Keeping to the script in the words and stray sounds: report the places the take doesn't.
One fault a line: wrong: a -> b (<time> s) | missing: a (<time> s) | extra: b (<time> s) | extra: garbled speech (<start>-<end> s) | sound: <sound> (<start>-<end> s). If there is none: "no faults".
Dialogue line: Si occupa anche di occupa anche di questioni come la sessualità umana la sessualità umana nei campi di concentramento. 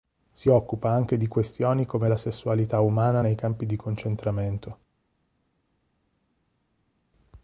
missing: occupa anche di (1.3 s)
missing: la sessualità umana (3.2 s)